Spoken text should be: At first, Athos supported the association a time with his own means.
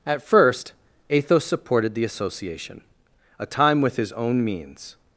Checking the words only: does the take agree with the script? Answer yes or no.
yes